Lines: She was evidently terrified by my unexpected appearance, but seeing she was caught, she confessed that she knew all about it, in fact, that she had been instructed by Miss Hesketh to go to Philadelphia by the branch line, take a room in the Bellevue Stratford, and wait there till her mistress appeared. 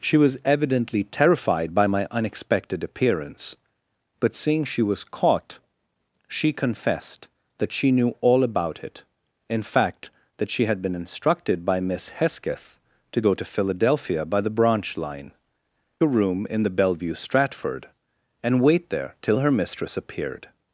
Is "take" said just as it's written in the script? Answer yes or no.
no